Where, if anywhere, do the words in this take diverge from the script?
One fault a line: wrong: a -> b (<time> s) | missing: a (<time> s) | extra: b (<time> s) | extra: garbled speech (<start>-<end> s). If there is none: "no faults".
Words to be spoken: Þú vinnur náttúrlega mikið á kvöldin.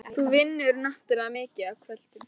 no faults